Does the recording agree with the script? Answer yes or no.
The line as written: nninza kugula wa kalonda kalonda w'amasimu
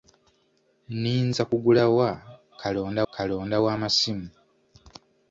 yes